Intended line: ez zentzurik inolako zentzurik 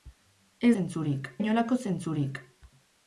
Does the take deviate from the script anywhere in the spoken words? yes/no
no